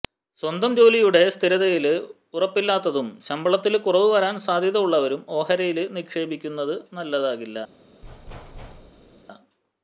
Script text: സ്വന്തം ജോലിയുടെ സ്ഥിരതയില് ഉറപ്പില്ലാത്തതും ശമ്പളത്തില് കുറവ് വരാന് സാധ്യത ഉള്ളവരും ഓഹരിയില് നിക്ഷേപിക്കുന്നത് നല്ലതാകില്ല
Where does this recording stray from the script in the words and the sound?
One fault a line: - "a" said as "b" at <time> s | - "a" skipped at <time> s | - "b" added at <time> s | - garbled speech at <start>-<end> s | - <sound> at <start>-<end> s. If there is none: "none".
- thud at 8.0-9.2 s